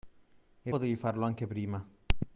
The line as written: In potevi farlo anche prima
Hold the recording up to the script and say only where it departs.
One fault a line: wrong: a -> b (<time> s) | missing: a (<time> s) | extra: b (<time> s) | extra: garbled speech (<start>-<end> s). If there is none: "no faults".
no faults